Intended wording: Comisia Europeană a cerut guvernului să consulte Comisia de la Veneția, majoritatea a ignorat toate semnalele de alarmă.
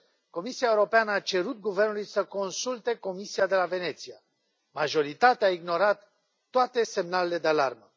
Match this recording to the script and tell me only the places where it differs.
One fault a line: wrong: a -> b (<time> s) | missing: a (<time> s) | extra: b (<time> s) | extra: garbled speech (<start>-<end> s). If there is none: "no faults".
no faults